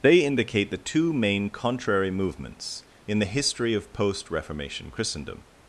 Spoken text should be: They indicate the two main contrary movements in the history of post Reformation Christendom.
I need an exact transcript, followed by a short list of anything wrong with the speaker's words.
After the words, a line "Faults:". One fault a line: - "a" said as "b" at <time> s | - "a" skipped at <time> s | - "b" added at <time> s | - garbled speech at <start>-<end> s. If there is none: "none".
They indicate the two main contrary movements in the history of post Reformation Christendom.
Faults:
none